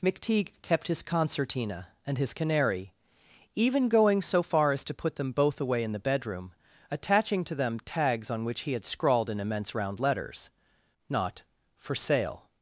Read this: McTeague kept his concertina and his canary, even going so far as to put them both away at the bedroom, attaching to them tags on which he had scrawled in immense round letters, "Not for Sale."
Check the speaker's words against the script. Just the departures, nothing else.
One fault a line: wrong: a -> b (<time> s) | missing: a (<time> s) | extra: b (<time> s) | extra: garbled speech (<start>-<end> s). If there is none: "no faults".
wrong: at -> in (5.8 s)